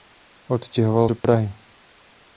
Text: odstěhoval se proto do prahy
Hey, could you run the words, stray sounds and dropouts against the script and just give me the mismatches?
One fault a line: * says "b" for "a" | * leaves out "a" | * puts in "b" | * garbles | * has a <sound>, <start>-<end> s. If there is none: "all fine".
* leaves out "se proto"
* has a dropout, 1.2-1.2 s